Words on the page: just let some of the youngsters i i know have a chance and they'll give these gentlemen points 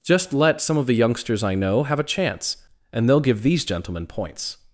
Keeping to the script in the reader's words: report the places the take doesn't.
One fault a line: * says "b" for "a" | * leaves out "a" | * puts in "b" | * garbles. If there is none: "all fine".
* leaves out "i"